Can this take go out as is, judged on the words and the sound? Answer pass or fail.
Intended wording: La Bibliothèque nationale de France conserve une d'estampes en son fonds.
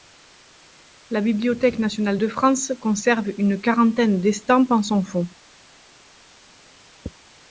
fail